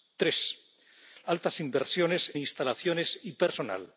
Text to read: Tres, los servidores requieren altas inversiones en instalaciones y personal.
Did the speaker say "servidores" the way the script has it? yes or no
no